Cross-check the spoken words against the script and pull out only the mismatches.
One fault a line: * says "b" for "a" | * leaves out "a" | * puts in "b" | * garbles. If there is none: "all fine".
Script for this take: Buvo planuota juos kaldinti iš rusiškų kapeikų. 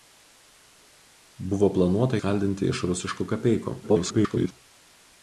* leaves out "juos"
* garbles